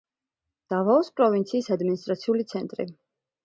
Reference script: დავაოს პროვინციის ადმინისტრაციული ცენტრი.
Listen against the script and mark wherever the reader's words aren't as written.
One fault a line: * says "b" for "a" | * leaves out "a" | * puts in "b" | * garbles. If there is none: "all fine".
all fine